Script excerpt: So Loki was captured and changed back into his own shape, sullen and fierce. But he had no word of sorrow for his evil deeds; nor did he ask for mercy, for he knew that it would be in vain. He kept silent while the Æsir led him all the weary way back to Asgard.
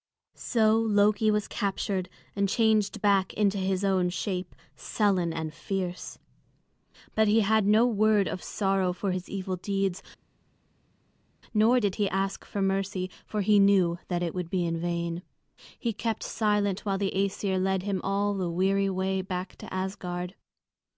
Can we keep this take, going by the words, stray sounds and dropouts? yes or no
yes